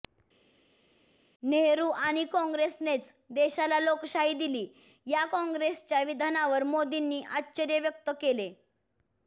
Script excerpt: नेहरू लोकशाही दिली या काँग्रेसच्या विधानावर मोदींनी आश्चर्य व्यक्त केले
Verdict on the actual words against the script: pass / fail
fail